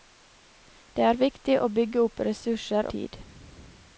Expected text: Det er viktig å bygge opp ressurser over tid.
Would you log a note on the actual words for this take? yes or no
yes